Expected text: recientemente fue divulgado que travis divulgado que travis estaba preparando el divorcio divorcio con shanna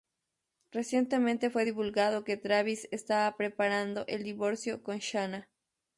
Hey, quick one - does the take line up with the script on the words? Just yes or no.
no